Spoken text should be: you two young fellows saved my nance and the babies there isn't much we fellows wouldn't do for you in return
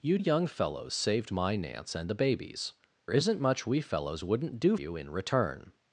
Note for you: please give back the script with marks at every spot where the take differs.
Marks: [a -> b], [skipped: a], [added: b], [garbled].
you [skipped: two] young fellows saved my nance and the babies [skipped: there] isn't much we fellows wouldn't do [skipped: for] you in return